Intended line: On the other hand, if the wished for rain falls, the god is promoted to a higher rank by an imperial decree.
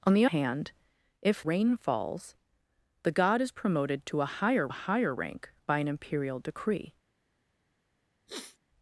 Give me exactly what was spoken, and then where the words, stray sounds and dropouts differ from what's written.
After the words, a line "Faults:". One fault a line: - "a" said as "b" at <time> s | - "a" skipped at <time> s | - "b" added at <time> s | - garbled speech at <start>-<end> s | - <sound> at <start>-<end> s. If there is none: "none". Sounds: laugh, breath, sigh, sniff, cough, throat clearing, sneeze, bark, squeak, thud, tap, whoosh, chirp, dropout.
On the hand, if rain falls, the god is promoted to a higher a higher rank by an imperial decree.
Faults:
- "other" skipped at 0.2 s
- "the wished for" skipped at 1.5 s
- "a higher" added at 4.7 s
- sniff at 8.3-8.6 s